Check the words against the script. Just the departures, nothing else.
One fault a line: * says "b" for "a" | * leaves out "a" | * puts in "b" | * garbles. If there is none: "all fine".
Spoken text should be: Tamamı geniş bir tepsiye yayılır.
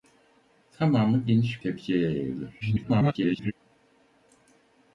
* leaves out "bir"
* garbles